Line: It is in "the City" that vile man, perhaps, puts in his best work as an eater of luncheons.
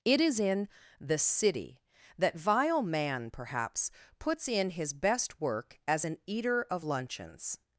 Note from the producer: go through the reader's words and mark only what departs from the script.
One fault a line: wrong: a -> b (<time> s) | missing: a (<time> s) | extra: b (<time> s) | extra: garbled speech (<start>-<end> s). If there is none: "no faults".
no faults